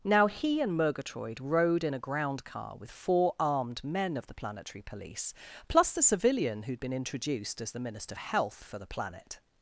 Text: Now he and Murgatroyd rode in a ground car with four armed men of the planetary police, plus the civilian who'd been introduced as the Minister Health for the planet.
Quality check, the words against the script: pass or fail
pass